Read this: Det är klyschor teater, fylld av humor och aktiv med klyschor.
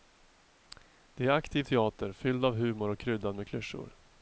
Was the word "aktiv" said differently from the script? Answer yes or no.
yes